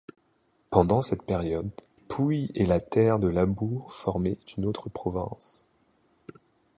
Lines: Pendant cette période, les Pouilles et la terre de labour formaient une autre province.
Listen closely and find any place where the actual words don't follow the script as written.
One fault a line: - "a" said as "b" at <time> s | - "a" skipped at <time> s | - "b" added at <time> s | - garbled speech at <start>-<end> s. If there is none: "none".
- "les" skipped at 1.7 s